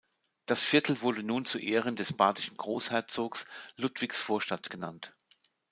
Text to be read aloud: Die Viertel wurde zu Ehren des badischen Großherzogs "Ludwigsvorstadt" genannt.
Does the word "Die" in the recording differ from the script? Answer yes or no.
yes